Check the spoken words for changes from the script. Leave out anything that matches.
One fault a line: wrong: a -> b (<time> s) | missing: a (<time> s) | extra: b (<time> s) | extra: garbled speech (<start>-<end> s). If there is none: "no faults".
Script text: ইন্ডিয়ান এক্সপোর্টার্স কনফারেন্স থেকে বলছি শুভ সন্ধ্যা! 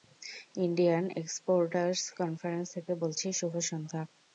no faults